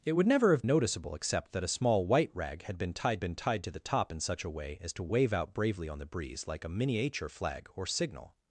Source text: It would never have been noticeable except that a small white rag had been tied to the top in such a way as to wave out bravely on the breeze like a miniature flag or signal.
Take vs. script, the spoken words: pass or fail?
fail